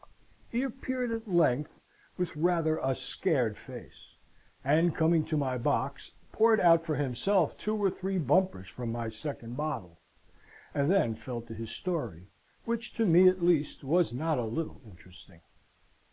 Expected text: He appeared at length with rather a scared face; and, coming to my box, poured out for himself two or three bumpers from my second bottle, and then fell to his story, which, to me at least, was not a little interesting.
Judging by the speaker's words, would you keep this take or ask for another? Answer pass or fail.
pass